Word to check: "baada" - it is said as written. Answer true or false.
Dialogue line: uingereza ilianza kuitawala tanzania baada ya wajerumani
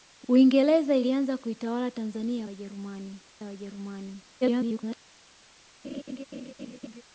false